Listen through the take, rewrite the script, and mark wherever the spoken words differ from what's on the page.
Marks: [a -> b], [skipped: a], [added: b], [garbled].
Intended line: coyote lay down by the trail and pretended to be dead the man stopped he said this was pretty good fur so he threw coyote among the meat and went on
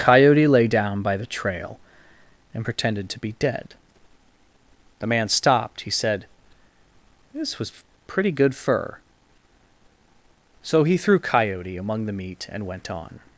coyote lay down by the trail and pretended to be dead the man stopped he said this was pretty good fur so he threw coyote among the meat and went on